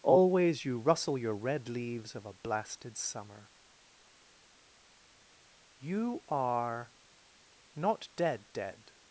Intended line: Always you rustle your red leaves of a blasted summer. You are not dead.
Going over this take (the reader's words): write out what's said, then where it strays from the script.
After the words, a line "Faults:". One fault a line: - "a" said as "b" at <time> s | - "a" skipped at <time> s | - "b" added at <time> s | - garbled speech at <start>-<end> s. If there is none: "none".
Always you rustle your red leaves of a blasted summer. You are not dead dead.
Faults:
- "dead" added at 8.5 s